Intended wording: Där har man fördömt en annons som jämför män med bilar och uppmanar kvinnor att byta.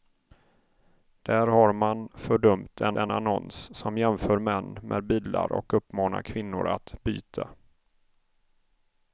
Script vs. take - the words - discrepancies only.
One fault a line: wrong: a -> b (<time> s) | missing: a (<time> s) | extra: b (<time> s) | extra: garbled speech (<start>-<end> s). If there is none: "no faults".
extra: en (3.0 s)